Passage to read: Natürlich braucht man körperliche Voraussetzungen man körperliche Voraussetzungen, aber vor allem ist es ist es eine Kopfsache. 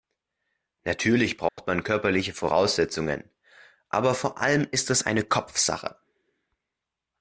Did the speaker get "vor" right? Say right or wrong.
right